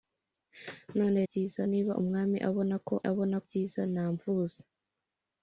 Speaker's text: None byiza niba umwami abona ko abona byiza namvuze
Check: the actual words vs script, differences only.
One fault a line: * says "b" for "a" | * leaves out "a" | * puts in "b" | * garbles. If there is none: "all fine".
all fine